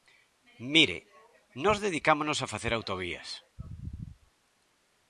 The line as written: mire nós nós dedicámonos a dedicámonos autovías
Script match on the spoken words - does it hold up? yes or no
no